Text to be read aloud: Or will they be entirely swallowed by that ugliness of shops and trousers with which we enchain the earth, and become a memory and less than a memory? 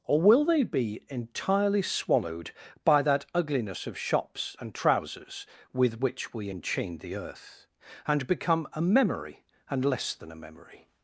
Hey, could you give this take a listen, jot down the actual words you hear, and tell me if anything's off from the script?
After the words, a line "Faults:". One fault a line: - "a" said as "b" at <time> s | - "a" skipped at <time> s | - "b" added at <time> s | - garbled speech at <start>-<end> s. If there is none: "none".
Or will they be entirely swallowed by that ugliness of shops and trousers with which we enchain the earth, and become a memory and less than a memory?
Faults:
none